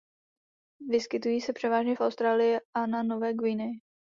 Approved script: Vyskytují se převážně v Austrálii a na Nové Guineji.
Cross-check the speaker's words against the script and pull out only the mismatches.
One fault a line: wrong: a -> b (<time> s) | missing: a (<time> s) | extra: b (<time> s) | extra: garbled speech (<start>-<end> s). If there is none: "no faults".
no faults